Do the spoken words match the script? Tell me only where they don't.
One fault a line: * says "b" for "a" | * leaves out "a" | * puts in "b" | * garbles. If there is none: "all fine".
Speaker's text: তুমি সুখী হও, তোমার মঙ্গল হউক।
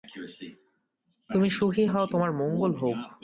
all fine